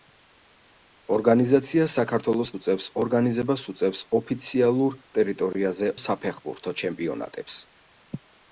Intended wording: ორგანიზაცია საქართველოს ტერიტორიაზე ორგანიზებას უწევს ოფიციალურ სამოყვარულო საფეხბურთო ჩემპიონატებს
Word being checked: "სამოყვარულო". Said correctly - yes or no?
no